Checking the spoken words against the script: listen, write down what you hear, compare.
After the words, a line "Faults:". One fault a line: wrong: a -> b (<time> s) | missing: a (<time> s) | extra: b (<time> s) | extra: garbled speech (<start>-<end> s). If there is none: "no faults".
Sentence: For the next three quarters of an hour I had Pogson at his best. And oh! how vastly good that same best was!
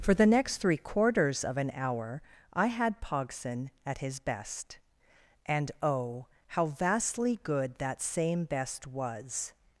For the next three quarters of an hour I had Pogson at his best. And oh! how vastly good that same best was!
Faults:
no faults